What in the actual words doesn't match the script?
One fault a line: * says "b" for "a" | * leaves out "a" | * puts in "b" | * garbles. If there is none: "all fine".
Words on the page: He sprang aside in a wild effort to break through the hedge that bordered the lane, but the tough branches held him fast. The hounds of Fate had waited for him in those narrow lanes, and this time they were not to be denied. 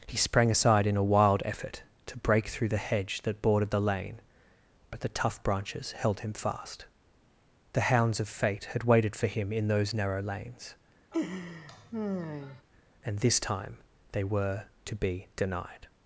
* leaves out "not"